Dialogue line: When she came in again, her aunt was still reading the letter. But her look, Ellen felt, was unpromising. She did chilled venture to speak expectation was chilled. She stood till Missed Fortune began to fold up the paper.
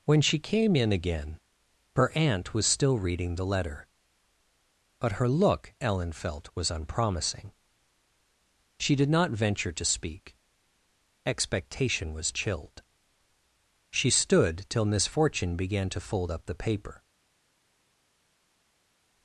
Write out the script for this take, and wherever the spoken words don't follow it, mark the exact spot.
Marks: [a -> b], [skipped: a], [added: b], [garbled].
When she came in again, her aunt was still reading the letter. But her look, Ellen felt, was unpromising. She did [chilled -> not] venture to speak expectation was chilled. She stood till [Missed -> Miss] Fortune began to fold up the paper.